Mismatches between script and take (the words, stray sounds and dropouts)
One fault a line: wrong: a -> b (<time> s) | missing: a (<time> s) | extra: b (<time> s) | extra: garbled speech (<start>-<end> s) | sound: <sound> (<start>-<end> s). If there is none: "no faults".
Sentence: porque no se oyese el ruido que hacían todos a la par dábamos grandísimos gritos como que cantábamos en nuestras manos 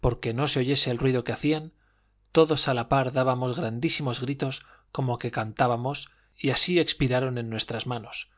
extra: y así expiraron (6.4 s)